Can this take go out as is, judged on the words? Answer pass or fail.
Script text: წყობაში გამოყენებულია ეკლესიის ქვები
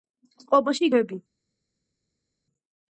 fail